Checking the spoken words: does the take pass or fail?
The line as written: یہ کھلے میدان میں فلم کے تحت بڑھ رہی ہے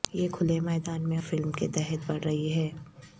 pass